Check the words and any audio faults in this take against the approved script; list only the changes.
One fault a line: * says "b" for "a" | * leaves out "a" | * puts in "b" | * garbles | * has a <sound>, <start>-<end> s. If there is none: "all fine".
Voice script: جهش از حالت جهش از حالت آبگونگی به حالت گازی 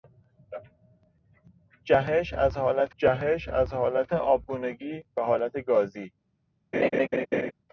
* has a laugh, 6.7-7.5 s